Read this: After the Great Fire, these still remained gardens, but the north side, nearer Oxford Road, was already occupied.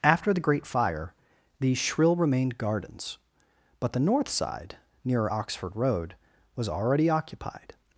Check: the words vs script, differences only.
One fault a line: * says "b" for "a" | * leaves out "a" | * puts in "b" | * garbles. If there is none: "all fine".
* says "shrill" for "still"